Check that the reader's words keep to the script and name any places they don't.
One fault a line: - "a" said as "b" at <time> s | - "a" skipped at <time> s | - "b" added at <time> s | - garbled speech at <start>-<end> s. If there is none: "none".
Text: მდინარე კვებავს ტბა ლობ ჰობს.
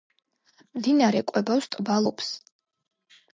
- "ლობ" skipped at 2.0 s